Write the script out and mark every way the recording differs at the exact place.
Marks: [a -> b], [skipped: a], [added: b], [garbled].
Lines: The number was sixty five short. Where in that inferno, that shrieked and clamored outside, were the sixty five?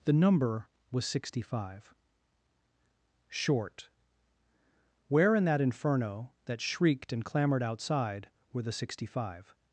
The number was sixty five short. Where in that inferno, that shrieked and clamored outside, were the sixty five?